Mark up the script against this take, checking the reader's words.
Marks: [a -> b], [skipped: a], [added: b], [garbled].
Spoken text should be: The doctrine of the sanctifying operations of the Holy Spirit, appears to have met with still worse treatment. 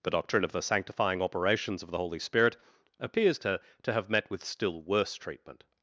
The doctrine of the sanctifying operations of the Holy Spirit, appears to [added: to] have met with still worse treatment.